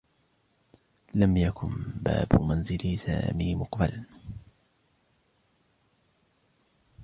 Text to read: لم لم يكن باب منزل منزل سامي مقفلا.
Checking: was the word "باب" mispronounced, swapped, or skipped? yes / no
no